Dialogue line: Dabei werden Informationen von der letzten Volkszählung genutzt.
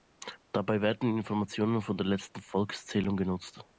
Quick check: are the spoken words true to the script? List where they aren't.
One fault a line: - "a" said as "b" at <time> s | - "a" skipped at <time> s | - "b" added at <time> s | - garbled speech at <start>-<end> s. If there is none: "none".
none